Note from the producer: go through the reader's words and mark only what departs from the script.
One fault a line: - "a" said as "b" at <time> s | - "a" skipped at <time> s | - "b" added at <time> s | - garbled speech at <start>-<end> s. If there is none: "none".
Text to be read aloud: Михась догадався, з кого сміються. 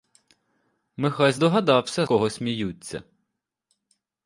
- "з" skipped at 2.1 s